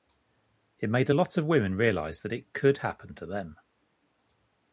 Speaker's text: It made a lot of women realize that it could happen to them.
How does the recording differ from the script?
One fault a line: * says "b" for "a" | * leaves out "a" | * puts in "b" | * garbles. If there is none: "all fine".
all fine